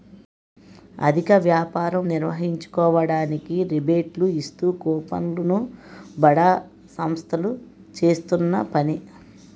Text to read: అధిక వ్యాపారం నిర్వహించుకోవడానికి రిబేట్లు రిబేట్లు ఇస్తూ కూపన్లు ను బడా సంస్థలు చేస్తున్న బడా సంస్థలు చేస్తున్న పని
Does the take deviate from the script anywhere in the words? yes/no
yes